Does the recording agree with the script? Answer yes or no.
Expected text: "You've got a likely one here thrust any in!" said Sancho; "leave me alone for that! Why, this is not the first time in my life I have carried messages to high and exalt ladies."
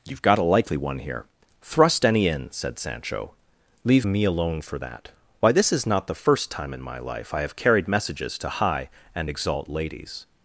yes